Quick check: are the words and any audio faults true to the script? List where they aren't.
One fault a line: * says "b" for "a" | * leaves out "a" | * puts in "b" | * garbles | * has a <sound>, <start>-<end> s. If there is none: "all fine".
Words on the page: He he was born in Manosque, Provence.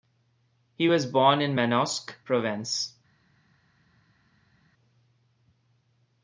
* leaves out "he"